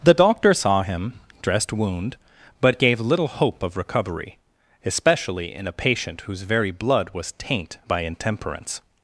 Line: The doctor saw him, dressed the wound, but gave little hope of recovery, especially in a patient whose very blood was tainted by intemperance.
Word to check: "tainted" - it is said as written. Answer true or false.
false